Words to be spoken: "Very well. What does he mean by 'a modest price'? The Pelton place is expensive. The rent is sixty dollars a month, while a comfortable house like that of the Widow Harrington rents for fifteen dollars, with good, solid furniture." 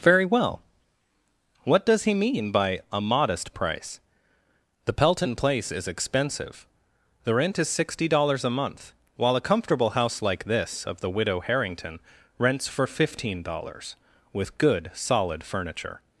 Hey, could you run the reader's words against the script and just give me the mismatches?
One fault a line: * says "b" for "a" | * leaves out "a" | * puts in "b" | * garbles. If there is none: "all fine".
* says "this" for "that"